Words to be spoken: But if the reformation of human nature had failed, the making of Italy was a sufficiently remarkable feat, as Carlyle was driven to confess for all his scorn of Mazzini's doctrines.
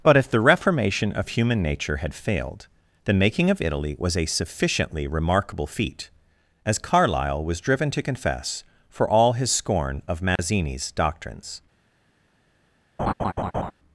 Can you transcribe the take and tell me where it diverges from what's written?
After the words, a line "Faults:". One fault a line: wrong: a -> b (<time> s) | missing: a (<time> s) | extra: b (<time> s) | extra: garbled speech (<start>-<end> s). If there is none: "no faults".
But if the reformation of human nature had failed, the making of Italy was a sufficiently remarkable feat, as Carlyle was driven to confess for all his scorn of Mazzini's doctrines.
Faults:
no faults